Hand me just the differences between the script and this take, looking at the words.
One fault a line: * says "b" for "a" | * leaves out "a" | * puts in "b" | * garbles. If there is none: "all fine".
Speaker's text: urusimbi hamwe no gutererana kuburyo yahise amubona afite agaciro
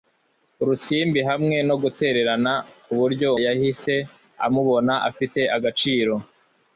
all fine